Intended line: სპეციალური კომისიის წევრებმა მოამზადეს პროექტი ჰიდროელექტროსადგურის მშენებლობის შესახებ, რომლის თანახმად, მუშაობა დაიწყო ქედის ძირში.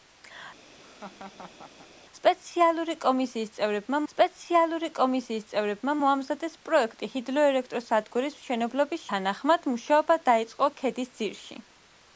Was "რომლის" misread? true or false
true